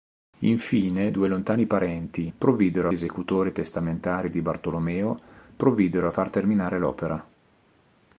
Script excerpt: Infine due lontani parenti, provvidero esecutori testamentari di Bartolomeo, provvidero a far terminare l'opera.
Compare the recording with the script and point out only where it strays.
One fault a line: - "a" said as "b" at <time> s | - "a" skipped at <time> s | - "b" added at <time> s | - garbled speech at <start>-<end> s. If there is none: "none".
none